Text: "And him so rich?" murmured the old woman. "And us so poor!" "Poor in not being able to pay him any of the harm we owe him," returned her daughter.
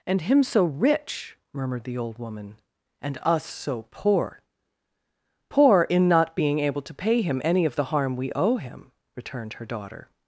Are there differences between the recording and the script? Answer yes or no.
no